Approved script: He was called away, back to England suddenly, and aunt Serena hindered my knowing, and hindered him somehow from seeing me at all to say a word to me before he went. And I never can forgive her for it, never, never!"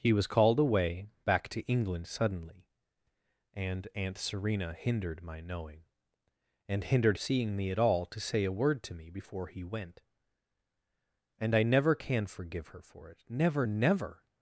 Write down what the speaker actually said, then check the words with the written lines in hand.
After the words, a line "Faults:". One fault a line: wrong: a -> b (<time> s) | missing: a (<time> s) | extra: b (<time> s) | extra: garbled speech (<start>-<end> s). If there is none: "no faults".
He was called away, back to England suddenly, and aunt Serena hindered my knowing, and hindered seeing me at all to say a word to me before he went. And I never can forgive her for it, never, never!"
Faults:
missing: him somehow from (7.2 s)